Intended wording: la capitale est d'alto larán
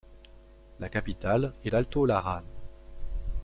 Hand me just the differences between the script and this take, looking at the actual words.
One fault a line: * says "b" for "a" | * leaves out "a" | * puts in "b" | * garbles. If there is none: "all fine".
all fine